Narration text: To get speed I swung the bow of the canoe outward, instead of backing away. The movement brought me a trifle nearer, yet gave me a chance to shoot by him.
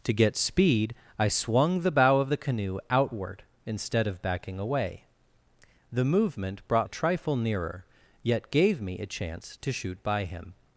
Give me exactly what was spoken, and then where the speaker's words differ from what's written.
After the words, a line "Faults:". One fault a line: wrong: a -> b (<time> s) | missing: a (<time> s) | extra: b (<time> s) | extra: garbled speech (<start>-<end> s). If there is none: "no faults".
To get speed I swung the bow of the canoe outward, instead of backing away. The movement brought a trifle nearer, yet gave me a chance to shoot by him.
Faults:
missing: me (6.9 s)